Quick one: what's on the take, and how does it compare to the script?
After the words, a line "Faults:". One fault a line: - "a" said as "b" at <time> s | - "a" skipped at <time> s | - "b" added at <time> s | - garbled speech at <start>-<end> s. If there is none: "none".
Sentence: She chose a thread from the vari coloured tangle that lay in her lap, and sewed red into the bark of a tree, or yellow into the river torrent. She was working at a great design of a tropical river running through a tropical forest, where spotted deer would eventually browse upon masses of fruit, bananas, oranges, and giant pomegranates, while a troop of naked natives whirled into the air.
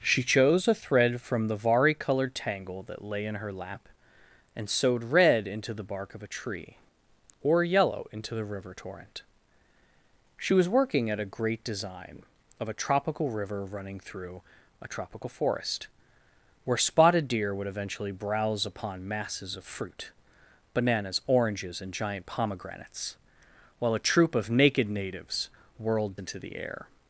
She chose a thread from the vari coloured tangle that lay in her lap, and sewed red into the bark of a tree, or yellow into the river torrent. She was working at a great design of a tropical river running through a tropical forest, where spotted deer would eventually browse upon masses of fruit, bananas, oranges, and giant pomegranates, while a troop of naked natives whirled into the air.
Faults:
none